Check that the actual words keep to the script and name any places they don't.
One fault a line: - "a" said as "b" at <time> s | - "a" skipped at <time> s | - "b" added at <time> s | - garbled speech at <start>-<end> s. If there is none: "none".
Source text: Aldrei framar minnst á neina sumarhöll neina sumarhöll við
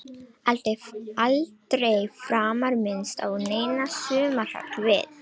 - "neina sumarhöll" skipped at 4.8 s